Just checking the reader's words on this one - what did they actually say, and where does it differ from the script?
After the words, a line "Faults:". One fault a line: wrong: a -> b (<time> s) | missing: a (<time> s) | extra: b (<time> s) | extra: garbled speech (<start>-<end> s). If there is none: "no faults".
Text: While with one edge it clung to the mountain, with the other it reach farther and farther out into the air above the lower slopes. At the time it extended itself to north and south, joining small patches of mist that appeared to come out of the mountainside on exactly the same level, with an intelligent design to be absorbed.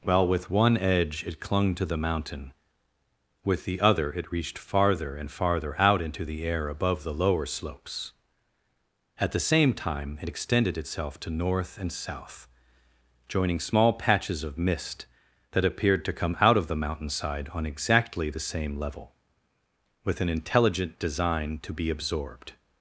While with one edge it clung to the mountain, with the other it reached farther and farther out into the air above the lower slopes. At the same time it extended itself to north and south, joining small patches of mist that appeared to come out of the mountainside on exactly the same level, with an intelligent design to be absorbed.
Faults:
wrong: reach -> reached (4.3 s)
extra: same (9.4 s)